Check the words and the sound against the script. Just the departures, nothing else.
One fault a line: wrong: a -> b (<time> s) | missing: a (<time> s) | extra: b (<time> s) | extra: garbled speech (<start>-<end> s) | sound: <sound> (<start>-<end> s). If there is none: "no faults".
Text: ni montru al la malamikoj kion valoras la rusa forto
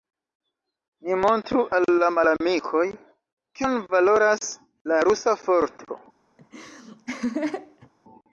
sound: laugh (6.4-7.9 s)